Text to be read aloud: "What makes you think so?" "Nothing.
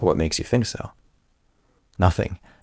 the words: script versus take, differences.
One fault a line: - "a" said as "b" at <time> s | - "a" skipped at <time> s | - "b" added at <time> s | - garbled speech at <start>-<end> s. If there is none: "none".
none